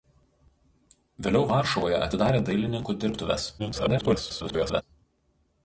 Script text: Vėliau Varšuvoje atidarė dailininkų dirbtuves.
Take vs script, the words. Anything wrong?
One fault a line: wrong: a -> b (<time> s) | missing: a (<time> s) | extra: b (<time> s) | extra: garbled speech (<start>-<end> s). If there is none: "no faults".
extra: garbled speech (3.6-4.8 s)